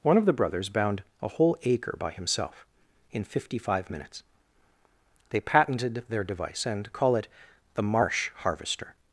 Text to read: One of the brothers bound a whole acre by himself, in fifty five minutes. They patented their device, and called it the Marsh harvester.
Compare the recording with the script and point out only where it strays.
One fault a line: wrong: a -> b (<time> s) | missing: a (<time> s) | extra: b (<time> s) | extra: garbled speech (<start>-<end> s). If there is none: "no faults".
wrong: called -> call (6.9 s)